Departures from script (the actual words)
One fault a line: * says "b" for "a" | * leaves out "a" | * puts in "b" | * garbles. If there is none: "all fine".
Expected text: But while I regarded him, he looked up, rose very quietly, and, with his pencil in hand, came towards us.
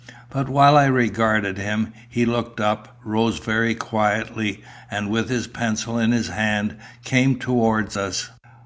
* puts in "his"